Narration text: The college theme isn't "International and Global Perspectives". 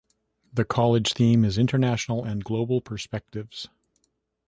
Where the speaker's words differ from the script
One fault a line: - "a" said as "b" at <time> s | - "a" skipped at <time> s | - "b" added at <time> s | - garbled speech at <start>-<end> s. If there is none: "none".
- "isn't" said as "is" at 1.4 s